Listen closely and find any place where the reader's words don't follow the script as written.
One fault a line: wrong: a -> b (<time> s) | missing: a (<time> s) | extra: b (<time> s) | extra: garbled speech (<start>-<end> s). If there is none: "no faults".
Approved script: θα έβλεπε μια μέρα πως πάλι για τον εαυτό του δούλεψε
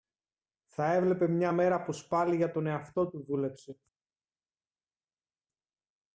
no faults